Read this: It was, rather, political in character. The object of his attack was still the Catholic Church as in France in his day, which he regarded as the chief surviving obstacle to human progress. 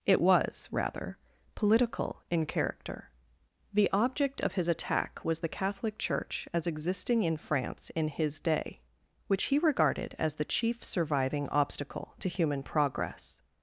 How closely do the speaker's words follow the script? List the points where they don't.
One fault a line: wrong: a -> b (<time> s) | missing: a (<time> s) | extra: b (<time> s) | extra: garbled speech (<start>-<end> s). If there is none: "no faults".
missing: still (5.4 s)
extra: existing (6.7 s)